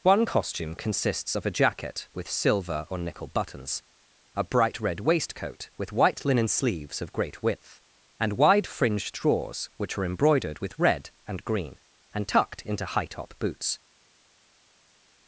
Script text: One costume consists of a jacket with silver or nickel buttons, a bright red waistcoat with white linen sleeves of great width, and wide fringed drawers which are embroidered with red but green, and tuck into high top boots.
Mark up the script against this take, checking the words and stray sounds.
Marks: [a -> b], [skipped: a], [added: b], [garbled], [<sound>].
One costume consists of a jacket with silver or nickel buttons, a bright red waistcoat with white linen sleeves of great width, and wide fringed drawers which are embroidered with red [but -> and] green, and [tuck -> tucked] into high top boots.